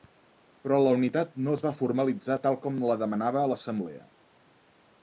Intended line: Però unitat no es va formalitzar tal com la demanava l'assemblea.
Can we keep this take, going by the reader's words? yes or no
no